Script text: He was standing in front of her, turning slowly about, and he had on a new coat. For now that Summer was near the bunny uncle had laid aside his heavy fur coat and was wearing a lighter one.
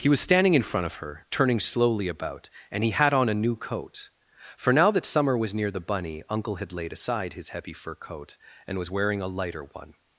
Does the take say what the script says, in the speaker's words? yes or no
yes